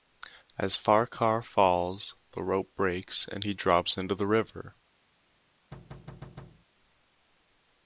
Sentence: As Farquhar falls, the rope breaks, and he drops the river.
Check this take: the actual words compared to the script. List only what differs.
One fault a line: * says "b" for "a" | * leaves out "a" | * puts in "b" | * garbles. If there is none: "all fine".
* puts in "into"